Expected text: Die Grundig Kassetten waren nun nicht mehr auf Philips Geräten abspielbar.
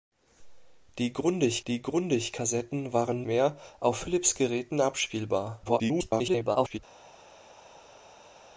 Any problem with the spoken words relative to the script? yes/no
yes